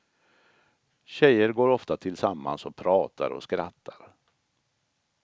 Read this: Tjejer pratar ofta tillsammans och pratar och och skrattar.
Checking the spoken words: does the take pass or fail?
fail